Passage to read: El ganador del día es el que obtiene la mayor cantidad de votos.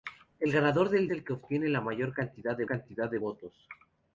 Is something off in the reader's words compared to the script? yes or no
yes